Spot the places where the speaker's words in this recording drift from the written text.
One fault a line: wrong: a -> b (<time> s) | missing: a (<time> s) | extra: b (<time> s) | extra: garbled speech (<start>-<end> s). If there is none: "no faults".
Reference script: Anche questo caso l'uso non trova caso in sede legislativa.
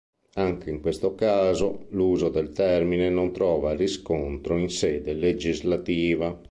extra: in (0.7 s)
extra: del termine (2.3 s)
wrong: caso -> riscontro (3.8 s)